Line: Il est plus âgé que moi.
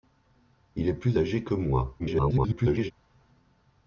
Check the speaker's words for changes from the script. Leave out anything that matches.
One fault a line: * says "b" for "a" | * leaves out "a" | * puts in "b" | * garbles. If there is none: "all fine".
* garbles